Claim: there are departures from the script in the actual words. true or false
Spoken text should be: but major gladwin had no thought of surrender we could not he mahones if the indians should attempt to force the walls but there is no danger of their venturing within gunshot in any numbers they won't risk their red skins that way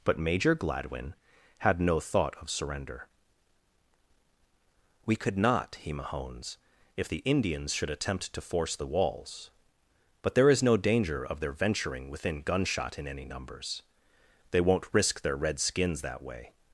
false